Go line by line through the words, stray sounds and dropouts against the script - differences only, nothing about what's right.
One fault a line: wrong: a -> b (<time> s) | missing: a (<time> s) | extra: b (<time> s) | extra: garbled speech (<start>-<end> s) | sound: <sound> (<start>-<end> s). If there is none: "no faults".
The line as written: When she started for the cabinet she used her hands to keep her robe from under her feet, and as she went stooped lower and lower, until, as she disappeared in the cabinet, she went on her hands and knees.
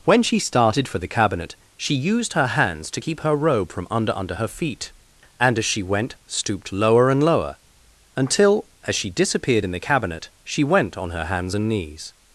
extra: under (4.1 s)